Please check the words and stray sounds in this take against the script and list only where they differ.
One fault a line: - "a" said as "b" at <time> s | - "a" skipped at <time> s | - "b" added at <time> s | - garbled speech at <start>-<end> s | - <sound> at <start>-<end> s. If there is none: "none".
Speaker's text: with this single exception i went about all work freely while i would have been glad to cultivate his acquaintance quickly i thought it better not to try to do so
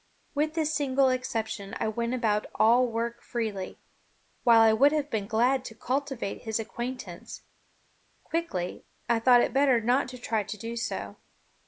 none